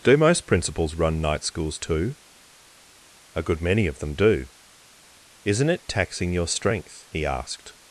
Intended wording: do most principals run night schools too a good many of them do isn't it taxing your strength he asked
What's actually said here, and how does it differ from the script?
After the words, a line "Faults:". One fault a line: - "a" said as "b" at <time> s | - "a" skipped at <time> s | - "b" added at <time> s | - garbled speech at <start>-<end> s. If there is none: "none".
do most principals run night schools too a good many of them do isn't it taxing your strength he asked
Faults:
none